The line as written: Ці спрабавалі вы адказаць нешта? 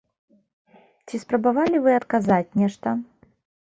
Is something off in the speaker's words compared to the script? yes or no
no